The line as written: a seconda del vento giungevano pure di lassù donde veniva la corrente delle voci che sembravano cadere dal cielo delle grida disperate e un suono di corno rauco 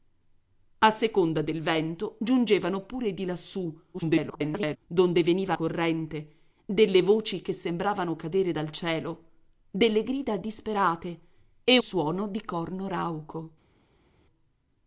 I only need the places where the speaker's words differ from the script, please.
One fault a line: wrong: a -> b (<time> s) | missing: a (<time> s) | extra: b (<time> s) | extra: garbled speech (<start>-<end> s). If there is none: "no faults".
extra: garbled speech (3.9-4.8 s)
missing: la (5.5 s)
missing: un (11.8 s)